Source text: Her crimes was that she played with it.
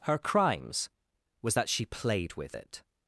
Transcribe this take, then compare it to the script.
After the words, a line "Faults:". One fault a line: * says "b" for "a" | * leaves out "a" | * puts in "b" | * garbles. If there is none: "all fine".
Her crimes was that she played with it.
Faults:
all fine